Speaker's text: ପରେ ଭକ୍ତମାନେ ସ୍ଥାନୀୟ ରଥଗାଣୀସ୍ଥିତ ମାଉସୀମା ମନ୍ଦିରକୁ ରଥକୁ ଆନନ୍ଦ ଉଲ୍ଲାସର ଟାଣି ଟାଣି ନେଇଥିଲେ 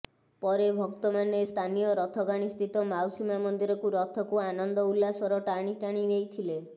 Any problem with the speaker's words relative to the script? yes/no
no